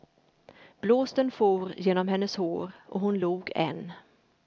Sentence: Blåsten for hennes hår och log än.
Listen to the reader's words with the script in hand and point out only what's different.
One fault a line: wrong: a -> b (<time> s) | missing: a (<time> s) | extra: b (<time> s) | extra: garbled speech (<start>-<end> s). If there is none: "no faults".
extra: genom (1.8 s)
extra: hon (3.0 s)